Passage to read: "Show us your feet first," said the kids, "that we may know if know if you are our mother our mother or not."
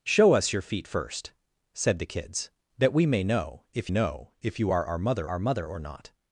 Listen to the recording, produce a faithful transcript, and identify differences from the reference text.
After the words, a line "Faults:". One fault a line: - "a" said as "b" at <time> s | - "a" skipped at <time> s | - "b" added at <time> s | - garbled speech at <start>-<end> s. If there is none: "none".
"Show us your feet first," said the kids, "that we may know if know if you are our mother our mother or not."
Faults:
none